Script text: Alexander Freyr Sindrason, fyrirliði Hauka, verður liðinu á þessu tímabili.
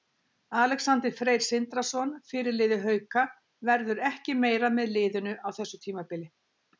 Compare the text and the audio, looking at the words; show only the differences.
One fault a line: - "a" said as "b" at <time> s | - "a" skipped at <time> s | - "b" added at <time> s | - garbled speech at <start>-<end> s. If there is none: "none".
- "ekki meira með" added at 4.1 s